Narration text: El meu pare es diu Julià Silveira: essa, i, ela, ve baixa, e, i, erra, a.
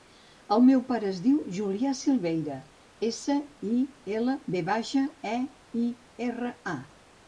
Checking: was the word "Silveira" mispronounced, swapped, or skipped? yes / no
no